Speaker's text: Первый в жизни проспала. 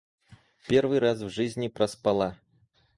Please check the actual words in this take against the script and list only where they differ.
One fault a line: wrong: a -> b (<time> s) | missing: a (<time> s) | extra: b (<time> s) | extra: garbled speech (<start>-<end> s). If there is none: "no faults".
extra: раз (1.0 s)